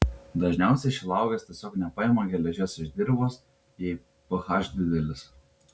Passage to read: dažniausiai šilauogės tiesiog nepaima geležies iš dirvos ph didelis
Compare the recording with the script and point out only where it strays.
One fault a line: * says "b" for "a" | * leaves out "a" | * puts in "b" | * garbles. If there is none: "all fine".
* puts in "jei"